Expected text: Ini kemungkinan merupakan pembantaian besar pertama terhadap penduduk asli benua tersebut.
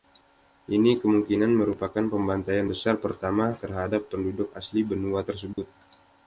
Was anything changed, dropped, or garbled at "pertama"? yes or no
no